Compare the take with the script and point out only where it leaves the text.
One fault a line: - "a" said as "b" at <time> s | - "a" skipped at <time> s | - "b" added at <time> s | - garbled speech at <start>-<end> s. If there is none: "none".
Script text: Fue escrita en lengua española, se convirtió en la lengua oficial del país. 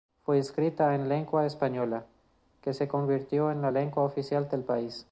- "que" added at 2.6 s